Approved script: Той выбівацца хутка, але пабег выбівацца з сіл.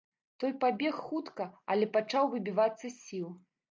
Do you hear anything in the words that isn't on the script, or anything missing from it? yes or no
yes